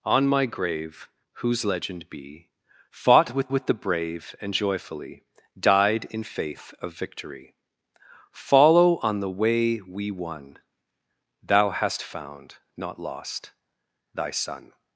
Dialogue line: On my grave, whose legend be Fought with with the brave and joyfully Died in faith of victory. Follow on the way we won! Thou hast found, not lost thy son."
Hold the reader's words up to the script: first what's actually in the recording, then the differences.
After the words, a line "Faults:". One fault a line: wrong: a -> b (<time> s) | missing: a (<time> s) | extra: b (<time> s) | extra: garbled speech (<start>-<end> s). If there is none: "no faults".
On my grave, whose legend be Fought with with the brave and joyfully Died in faith of victory. Follow on the way we won! Thou hast found, not lost thy son."
Faults:
no faults